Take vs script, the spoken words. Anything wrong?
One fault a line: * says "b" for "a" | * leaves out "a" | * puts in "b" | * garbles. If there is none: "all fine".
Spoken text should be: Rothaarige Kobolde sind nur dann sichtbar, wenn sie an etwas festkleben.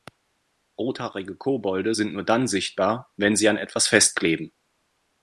all fine